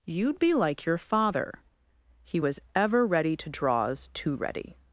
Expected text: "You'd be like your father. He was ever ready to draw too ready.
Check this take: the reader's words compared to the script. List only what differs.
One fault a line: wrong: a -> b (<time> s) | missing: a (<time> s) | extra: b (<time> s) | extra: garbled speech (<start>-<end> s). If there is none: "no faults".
wrong: draw -> draws (3.5 s)